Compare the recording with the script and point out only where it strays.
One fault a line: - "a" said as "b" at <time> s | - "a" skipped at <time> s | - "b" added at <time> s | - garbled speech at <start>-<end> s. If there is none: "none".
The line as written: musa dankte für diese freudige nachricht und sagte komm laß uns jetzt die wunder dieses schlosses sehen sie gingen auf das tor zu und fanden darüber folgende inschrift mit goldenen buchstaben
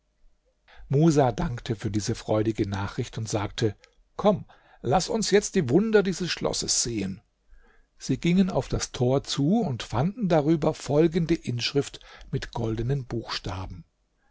none